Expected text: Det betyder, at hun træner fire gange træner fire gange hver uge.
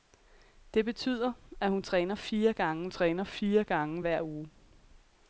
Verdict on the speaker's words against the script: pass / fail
pass